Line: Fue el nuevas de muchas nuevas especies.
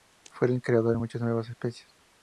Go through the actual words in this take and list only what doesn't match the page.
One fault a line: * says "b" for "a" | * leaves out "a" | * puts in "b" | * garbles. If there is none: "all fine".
* says "creador" for "nuevas"